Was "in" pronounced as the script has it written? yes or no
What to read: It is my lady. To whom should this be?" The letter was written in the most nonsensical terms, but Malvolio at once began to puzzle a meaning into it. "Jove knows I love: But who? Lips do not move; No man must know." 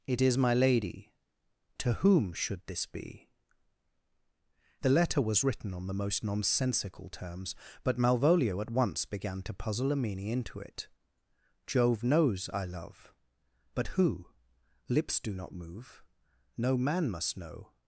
no